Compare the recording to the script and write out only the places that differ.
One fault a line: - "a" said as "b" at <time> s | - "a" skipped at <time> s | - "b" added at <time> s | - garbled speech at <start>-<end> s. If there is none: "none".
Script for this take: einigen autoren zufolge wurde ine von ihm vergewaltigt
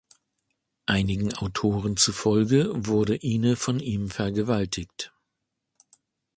none